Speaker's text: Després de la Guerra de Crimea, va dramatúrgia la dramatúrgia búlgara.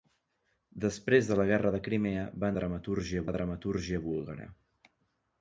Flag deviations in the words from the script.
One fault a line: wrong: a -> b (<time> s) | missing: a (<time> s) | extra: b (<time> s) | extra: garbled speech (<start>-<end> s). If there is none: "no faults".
no faults